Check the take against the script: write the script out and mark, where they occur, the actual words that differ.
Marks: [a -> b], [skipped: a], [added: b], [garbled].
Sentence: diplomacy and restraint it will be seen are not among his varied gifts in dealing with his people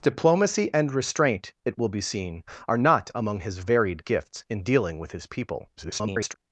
diplomacy and restraint it will be seen are not among his varied gifts in dealing with his people [garbled]